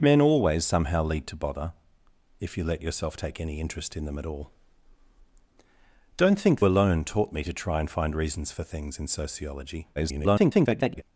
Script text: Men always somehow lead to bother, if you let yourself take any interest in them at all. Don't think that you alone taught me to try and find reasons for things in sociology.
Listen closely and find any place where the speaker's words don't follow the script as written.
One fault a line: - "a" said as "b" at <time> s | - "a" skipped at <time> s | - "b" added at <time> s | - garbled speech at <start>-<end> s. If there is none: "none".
- "that you" skipped at 6.6 s
- garbled speech at 10.0-11.0 s